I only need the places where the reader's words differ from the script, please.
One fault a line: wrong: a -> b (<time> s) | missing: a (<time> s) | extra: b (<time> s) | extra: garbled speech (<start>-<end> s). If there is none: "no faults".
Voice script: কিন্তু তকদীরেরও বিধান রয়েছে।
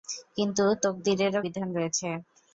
no faults